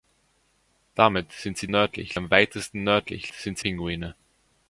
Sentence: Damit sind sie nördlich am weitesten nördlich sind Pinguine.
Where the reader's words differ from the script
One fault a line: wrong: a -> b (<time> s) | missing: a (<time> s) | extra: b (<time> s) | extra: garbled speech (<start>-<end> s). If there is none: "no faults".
no faults